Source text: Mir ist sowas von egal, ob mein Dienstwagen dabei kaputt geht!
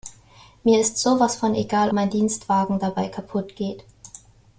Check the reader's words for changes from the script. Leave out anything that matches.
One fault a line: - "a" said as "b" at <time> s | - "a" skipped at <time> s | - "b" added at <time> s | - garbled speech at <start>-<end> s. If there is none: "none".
- "ob" skipped at 1.9 s